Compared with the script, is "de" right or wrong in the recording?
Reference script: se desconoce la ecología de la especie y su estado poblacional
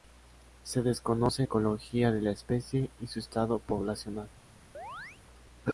right